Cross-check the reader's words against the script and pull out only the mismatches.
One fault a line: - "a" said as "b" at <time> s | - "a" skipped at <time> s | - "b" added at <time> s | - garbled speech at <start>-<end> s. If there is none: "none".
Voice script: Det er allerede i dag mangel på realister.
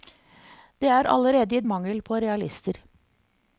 - "dag" skipped at 1.6 s